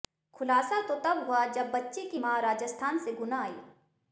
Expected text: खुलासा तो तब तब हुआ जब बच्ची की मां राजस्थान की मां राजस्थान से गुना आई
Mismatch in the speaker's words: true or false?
true